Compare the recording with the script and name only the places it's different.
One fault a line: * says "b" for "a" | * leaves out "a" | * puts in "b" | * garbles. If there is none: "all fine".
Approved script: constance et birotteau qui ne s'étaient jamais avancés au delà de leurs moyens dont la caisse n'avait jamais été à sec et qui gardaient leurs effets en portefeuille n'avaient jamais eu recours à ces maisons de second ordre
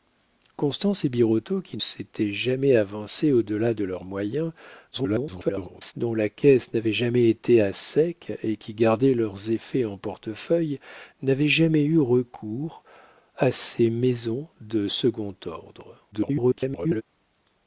* leaves out "ne"
* garbles
* garbles